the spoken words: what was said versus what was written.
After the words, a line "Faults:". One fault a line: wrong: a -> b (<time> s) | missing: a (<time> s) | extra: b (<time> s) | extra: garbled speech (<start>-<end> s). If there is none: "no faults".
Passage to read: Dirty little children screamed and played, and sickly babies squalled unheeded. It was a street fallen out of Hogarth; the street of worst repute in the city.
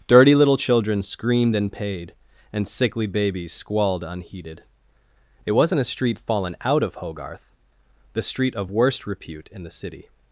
Dirty little children screamed and paid, and sickly babies squalled unheeded. It wasn't a street fallen out of Hogarth; the street of worst repute in the city.
Faults:
wrong: played -> paid (1.7 s)
wrong: was -> wasn't (5.5 s)